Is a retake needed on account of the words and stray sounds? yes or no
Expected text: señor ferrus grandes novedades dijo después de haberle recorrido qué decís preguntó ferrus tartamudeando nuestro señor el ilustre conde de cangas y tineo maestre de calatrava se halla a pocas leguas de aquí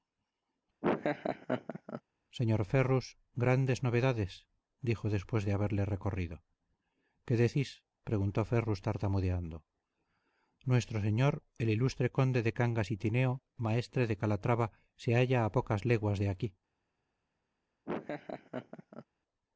yes